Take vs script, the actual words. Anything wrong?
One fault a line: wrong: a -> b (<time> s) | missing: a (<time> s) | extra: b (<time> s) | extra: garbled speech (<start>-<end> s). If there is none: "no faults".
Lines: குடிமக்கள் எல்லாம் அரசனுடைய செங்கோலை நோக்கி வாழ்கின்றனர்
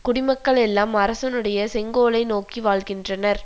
no faults